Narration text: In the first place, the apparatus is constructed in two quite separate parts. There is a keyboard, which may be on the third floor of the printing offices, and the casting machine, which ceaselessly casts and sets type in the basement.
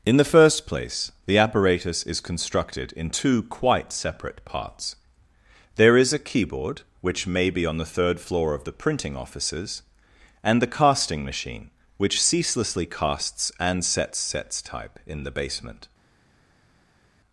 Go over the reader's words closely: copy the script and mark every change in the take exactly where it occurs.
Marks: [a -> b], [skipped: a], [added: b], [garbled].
In the first place, the apparatus is constructed in two quite separate parts. There is a keyboard, which may be on the third floor of the printing offices, and the casting machine, which ceaselessly casts and sets [added: sets] type in the basement.